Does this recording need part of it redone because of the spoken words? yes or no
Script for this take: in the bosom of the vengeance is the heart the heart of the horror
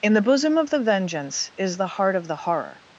yes